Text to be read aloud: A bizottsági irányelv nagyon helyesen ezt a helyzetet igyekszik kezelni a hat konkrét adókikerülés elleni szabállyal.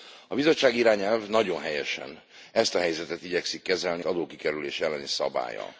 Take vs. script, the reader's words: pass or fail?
fail